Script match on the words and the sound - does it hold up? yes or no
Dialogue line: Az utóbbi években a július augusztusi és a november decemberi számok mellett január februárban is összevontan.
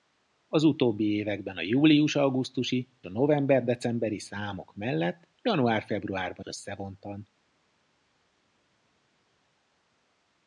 no